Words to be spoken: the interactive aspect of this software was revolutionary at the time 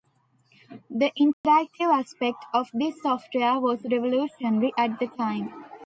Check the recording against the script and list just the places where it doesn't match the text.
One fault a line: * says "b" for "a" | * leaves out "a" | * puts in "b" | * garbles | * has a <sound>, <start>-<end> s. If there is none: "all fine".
* has a dropout, 1.3-1.4 s